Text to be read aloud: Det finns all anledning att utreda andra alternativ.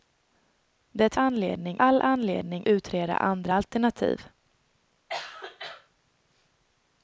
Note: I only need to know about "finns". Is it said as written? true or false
false